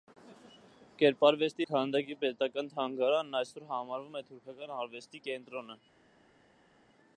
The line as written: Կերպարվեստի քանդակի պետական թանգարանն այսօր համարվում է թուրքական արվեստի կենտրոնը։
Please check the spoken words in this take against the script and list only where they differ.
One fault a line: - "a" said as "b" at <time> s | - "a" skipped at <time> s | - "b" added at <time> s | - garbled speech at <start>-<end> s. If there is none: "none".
none